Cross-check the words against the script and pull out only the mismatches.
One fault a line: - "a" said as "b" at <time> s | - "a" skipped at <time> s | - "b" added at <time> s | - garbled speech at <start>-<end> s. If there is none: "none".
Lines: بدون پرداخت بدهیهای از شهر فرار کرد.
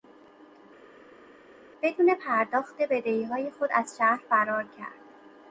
- "خود" added at 3.5 s